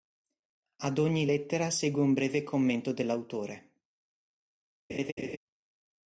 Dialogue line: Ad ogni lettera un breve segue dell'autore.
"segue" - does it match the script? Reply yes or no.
no